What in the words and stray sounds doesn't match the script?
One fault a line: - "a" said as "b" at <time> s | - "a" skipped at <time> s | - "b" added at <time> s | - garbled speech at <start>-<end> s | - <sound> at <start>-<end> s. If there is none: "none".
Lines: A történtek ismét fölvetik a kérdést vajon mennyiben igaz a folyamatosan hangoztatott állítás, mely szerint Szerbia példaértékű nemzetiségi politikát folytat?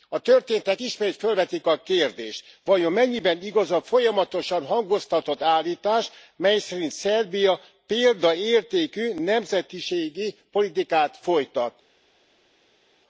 none